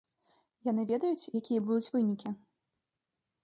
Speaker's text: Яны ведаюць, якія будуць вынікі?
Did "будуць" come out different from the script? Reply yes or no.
no